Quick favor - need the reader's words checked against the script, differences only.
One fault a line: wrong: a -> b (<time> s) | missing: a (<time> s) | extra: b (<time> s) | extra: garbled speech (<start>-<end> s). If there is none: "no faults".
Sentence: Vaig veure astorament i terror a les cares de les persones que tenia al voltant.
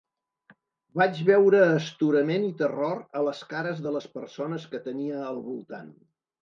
no faults